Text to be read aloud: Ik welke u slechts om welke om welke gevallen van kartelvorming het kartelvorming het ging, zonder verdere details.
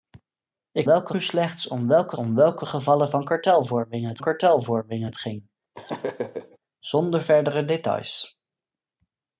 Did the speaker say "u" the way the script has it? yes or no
yes